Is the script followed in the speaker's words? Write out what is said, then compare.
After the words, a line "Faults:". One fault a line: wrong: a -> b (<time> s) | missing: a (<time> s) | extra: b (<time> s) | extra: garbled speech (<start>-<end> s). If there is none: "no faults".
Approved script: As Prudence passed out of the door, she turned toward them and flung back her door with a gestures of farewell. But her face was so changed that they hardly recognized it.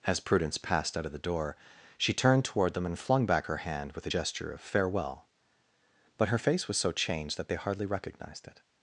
As Prudence passed out of the door, she turned toward them and flung back her hand with a gesture of farewell. But her face was so changed that they hardly recognized it.
Faults:
wrong: door -> hand (3.6 s)
wrong: gestures -> gesture (4.1 s)